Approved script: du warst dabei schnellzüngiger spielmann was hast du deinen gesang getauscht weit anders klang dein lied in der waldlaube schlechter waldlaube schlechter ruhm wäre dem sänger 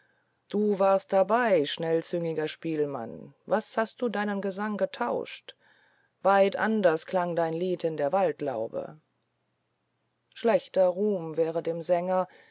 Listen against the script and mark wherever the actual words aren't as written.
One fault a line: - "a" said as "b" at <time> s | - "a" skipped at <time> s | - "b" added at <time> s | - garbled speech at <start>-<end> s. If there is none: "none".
- "waldlaube schlechter" skipped at 10.9 s